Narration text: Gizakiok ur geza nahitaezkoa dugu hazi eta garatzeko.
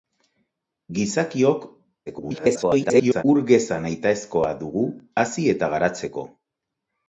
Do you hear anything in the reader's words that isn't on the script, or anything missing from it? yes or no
yes